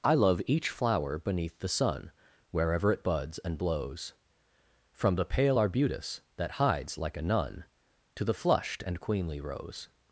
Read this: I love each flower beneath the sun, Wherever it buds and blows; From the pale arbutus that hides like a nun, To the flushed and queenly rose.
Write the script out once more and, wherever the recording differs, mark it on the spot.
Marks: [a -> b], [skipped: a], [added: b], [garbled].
I love each flower beneath the sun, Wherever it buds and blows; From the pale arbutus that hides like a nun, To the flushed and queenly rose.